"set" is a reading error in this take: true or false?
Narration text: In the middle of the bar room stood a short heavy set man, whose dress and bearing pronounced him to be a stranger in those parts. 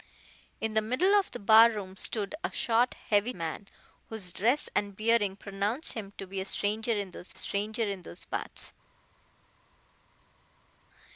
true